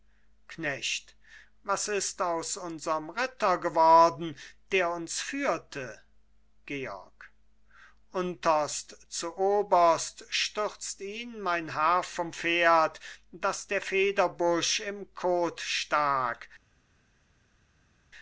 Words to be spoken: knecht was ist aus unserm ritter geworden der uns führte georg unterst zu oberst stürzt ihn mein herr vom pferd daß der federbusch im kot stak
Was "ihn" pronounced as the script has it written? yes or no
yes